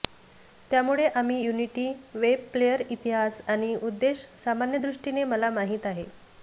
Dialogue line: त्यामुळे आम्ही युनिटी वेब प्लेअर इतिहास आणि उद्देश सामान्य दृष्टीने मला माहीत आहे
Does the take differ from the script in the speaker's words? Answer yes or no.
no